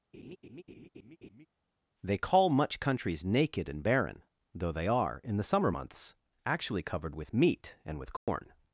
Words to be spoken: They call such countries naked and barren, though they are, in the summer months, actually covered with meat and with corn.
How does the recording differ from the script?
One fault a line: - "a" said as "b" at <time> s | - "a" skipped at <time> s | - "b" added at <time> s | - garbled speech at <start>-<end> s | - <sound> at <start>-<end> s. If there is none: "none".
- laugh at 0.1-1.5 s
- "such" said as "much" at 2.5 s
- dropout at 8.2-8.3 s